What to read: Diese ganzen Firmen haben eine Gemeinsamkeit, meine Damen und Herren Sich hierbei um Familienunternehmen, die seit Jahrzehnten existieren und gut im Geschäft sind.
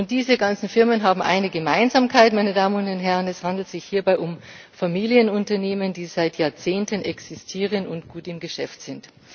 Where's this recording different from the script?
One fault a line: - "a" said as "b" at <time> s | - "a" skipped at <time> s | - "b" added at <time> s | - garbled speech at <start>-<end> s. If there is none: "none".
- "Es handelt" added at 3.3 s